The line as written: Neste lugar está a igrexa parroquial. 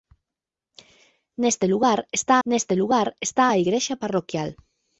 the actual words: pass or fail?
fail